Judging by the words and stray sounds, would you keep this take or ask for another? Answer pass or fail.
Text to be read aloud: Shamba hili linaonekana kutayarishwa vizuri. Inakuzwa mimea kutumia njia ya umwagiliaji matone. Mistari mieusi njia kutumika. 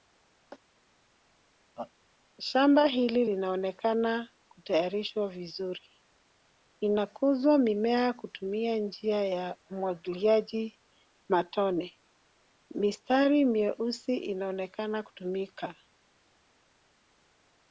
fail